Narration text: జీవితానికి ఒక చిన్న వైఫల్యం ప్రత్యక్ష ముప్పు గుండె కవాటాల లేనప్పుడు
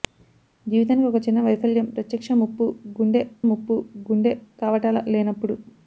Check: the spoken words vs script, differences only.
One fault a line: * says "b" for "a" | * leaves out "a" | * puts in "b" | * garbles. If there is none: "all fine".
* puts in "ముప్పు గుండె"